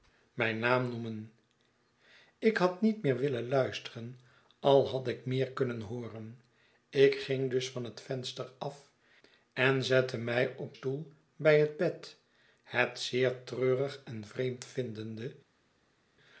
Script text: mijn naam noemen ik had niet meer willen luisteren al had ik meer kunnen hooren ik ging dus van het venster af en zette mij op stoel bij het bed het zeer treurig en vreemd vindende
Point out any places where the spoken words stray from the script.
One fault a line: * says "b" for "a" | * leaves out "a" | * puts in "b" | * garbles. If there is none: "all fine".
all fine